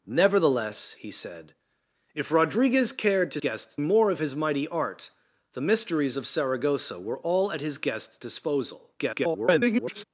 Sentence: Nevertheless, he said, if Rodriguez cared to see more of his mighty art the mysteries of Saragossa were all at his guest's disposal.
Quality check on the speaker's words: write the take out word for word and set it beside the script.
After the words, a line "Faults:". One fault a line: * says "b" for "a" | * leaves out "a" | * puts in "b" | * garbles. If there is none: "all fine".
Nevertheless, he said, if Rodriguez cared to guest's more of his mighty art the mysteries of Saragossa were all at his guest's disposal. [garbled]
Faults:
* says "guest's" for "see"
* garbles